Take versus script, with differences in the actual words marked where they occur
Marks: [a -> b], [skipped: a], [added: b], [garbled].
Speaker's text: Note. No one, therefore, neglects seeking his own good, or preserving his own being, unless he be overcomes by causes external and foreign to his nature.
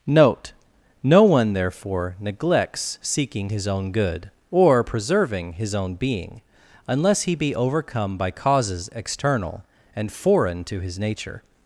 Note. No one, therefore, neglects seeking his own good, or preserving his own being, unless he be [overcomes -> overcome] by causes external and foreign to his nature.